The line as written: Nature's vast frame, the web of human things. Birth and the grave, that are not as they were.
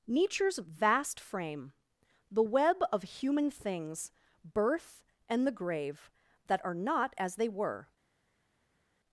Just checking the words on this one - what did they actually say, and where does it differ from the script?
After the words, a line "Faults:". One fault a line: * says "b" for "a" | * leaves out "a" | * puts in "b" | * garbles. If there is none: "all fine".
Nature's vast frame, the web of human things. Birth and the grave, that are not as they were.
Faults:
all fine